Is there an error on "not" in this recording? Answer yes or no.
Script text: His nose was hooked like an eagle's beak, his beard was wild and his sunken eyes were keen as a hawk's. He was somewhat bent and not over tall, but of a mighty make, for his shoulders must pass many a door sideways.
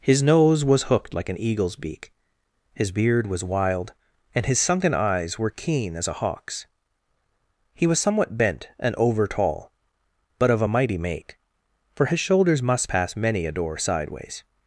yes